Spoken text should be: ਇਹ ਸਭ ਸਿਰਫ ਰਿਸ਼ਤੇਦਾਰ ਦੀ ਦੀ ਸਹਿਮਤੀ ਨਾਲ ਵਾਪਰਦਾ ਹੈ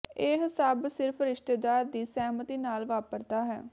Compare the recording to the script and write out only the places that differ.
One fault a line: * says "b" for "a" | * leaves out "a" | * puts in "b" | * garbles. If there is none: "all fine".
* leaves out "ਦੀ"